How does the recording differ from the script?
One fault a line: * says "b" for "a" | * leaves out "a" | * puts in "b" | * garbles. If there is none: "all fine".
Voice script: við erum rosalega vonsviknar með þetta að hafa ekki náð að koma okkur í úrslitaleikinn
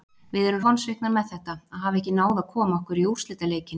* leaves out "rosalega"